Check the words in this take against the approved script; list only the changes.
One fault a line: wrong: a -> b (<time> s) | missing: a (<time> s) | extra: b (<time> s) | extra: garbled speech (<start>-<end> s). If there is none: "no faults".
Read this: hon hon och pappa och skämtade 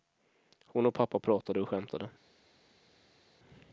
missing: hon (0.8 s)
extra: pratade (1.2 s)